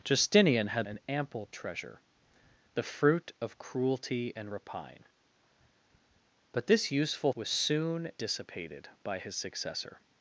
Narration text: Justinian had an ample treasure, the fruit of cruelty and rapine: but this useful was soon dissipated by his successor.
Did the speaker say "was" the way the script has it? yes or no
yes